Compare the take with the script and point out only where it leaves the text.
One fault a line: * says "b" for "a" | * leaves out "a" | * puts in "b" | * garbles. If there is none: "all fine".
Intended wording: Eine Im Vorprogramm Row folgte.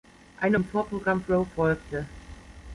all fine